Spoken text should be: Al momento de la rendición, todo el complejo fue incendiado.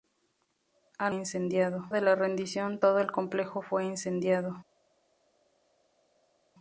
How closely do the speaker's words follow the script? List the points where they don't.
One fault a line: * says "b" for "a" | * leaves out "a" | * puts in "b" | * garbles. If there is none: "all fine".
* says "incendiado" for "momento"